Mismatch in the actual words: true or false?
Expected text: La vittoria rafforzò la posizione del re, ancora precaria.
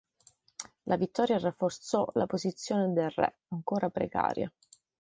false